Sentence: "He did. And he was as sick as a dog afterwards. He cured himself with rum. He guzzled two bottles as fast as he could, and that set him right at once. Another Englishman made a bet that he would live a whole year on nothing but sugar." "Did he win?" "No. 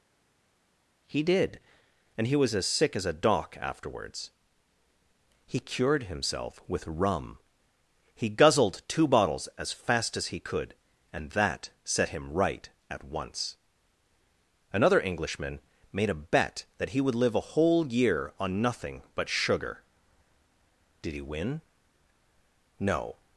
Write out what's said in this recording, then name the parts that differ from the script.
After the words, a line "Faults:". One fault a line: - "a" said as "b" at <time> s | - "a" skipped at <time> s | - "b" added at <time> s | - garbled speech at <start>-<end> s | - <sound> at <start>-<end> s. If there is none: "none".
"He did. And he was as sick as a dock afterwards. He cured himself with rum. He guzzled two bottles as fast as he could, and that set him right at once. Another Englishman made a bet that he would live a whole year on nothing but sugar." "Did he win?" "No.
Faults:
- "dog" said as "dock" at 3.1 s